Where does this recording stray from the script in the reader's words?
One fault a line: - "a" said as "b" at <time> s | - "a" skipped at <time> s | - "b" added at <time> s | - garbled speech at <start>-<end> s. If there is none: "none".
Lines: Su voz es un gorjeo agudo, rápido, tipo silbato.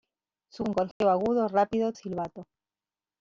- "voz es" skipped at 0.7 s
- "tipo" skipped at 1.9 s